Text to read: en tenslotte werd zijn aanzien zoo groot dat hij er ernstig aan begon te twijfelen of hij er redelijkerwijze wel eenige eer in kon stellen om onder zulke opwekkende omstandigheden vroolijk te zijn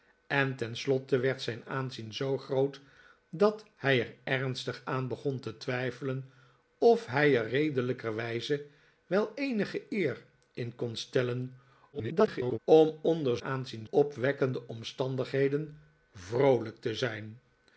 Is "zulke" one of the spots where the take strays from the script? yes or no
yes